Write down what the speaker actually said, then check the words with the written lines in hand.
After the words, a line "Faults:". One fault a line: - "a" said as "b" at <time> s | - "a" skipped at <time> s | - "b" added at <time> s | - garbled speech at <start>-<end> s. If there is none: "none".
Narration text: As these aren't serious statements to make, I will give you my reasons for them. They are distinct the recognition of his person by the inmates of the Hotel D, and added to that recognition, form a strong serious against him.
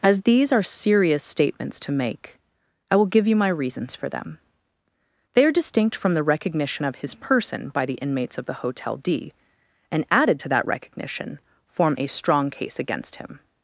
As these are serious statements to make, I will give you my reasons for them. They are distinct from the recognition of his person by the inmates of the Hotel D, and added to that recognition, form a strong case against him.
Faults:
- "aren't" said as "are" at 0.5 s
- "from" added at 6.0 s
- "serious" said as "case" at 12.5 s